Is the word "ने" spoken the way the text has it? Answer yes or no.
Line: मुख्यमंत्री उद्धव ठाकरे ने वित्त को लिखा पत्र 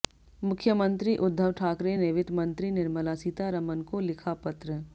yes